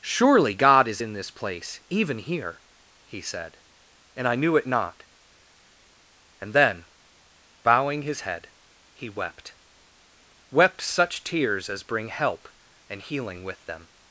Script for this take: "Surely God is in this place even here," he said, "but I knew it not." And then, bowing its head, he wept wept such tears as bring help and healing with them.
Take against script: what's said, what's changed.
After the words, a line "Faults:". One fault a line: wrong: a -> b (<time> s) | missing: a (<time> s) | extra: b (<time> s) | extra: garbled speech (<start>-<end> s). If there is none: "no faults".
"Surely God is in this place even here," he said, "and I knew it not." And then, bowing his head, he wept wept such tears as bring help and healing with them.
Faults:
wrong: but -> and (4.1 s)
wrong: its -> his (8.0 s)